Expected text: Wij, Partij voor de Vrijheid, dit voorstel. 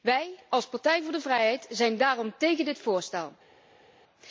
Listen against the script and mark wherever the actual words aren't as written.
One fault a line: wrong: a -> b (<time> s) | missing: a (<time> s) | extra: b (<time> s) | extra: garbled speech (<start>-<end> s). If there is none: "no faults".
extra: als (0.5 s)
extra: zijn daarom tegen (1.7 s)